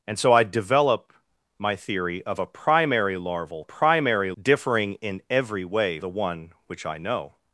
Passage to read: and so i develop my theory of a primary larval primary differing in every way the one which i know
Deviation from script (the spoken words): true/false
false